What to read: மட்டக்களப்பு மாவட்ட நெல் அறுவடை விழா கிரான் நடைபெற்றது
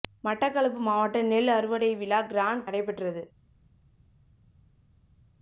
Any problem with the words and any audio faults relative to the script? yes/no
no